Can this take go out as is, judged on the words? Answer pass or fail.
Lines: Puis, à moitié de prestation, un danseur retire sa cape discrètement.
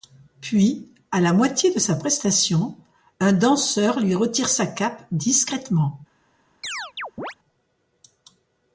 fail